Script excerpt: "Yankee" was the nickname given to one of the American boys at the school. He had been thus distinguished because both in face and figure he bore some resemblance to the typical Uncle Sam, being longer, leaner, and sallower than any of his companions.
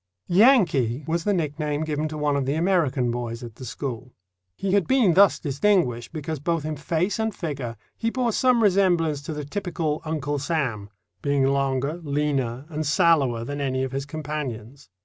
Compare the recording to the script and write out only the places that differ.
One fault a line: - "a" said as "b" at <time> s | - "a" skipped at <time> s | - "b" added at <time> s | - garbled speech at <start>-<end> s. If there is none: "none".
none